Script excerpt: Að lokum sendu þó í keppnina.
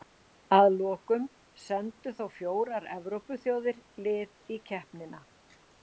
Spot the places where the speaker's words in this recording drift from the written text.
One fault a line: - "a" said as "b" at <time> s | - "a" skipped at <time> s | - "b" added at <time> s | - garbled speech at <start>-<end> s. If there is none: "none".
- "fjórar Evrópuþjóðir lið" added at 2.4 s